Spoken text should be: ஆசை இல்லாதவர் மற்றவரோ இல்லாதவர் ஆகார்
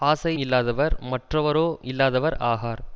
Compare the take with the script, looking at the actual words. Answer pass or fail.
pass